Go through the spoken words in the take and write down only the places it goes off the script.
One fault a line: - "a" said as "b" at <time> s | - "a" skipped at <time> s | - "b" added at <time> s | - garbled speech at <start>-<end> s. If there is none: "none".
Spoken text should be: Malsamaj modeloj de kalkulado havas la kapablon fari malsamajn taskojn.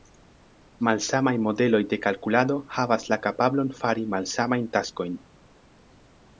none